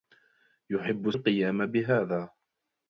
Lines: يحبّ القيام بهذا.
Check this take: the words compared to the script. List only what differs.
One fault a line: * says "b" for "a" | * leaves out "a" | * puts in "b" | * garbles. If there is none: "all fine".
all fine